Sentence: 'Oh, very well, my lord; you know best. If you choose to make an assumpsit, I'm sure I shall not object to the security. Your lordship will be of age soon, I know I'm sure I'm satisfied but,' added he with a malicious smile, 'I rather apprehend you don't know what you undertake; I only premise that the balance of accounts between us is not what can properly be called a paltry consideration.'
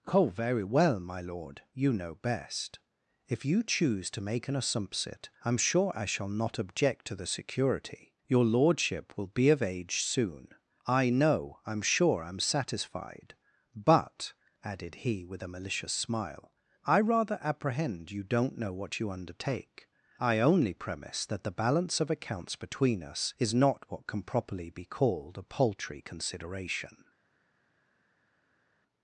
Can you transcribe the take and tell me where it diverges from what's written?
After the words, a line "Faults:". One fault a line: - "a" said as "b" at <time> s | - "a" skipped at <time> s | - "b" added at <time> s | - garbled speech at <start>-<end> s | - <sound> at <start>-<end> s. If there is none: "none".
'Oh, very well, my lord; you know best. If you choose to make an assumpsit, I'm sure I shall not object to the security. Your lordship will be of age soon, I know I'm sure I'm satisfied but,' added he with a malicious smile, 'I rather apprehend you don't know what you undertake; I only premise that the balance of accounts between us is not what can properly be called a paltry consideration.'
Faults:
none